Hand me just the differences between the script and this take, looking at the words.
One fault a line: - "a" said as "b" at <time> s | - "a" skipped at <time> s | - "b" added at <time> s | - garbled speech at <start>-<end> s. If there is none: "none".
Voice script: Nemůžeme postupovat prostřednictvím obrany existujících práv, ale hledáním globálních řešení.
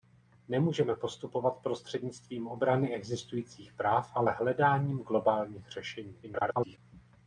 - garbled speech at 6.2-6.8 s